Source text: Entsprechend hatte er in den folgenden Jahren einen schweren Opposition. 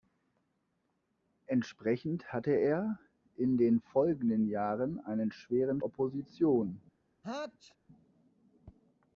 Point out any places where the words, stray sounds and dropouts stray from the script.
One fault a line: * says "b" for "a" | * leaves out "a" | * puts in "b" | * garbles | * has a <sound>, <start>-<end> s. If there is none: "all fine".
* has a sneeze, 7.2-7.8 s